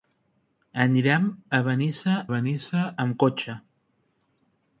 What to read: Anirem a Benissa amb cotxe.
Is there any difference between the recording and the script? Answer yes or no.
yes